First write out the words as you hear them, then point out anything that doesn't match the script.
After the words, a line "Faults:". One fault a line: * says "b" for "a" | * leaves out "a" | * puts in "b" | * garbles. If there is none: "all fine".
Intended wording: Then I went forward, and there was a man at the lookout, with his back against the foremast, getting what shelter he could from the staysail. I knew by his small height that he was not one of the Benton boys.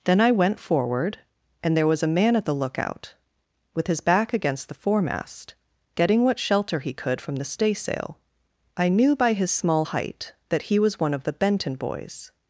Then I went forward, and there was a man at the lookout, with his back against the foremast, getting what shelter he could from the staysail. I knew by his small height that he was one of the Benton boys.
Faults:
* leaves out "not"